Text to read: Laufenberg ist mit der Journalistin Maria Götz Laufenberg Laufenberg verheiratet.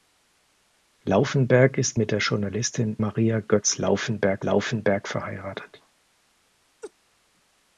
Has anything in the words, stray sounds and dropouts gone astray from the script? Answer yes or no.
yes